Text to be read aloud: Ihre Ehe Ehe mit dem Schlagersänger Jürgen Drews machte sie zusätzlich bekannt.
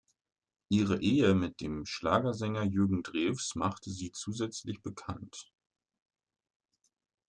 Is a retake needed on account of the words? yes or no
yes